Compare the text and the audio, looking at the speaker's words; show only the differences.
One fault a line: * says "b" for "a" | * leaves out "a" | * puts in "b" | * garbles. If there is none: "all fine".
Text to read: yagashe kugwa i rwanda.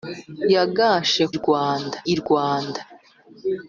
* says "rwanda" for "kugwa"